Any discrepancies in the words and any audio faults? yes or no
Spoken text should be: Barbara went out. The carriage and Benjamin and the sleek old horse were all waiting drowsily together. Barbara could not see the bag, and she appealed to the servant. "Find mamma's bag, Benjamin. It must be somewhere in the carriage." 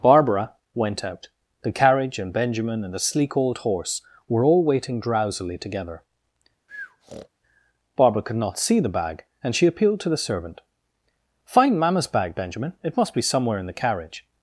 yes